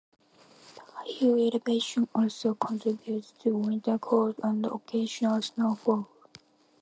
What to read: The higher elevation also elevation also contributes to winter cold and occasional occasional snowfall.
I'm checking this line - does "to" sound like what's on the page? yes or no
yes